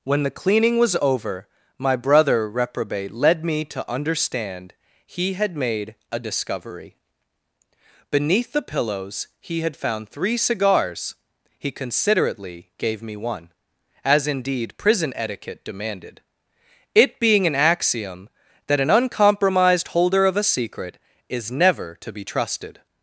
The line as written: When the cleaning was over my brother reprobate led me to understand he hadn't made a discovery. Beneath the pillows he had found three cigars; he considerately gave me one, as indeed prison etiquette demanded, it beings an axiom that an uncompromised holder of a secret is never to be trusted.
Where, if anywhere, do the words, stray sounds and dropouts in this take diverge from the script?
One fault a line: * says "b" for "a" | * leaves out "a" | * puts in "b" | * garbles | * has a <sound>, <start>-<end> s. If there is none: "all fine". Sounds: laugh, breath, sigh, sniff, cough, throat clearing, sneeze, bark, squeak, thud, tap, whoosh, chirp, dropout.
* says "had" for "hadn't"
* says "being" for "beings"